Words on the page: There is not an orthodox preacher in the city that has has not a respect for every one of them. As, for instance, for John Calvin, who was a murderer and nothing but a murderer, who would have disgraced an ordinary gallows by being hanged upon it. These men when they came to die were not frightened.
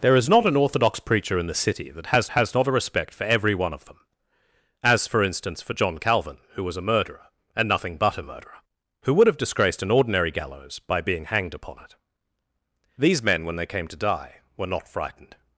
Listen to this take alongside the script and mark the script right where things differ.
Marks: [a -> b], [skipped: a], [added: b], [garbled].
There is not an orthodox preacher in the city that has has not a respect for every one of them. As, for instance, for John Calvin, who was a murderer and nothing but a murderer, who would have disgraced an ordinary gallows by being hanged upon it. These men when they came to die were not frightened.